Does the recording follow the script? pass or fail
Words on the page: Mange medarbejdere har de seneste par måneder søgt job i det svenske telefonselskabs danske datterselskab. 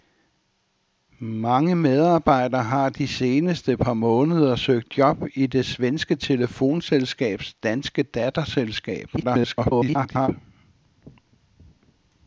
fail